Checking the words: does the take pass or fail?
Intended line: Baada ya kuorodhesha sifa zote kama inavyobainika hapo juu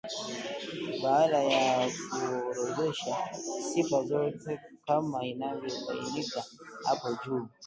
pass